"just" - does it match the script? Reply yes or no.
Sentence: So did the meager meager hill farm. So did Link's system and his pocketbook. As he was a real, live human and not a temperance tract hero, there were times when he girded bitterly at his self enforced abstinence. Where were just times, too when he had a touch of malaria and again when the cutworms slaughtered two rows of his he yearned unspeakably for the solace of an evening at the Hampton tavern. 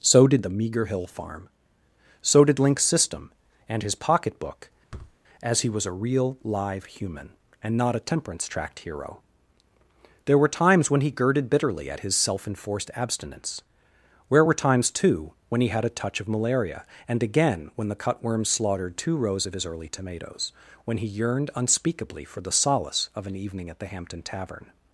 no